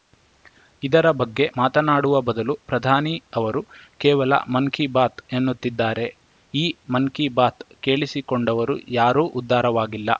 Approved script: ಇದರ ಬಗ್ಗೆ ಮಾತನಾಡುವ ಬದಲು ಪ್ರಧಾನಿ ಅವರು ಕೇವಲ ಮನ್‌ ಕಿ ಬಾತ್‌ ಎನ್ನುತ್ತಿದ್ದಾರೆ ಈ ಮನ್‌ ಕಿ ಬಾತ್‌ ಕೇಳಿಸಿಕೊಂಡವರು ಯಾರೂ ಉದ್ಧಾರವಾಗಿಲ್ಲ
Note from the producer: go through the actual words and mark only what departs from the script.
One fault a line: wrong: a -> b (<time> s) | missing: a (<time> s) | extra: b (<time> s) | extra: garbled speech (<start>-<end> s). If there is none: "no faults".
no faults